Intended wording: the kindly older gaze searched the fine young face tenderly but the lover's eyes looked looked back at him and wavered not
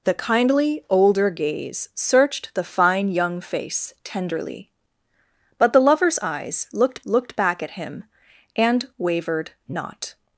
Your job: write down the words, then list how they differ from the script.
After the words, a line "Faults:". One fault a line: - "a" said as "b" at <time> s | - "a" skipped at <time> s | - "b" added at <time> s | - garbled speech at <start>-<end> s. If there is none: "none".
the kindly older gaze searched the fine young face tenderly but the lover's eyes looked looked back at him and wavered not
Faults:
none